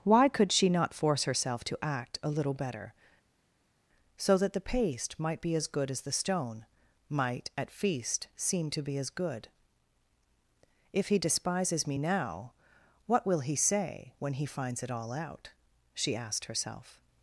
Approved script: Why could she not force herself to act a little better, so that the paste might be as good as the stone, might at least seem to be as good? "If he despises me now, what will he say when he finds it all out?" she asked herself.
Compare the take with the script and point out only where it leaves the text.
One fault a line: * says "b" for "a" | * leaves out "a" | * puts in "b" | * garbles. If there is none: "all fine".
* says "feast" for "least"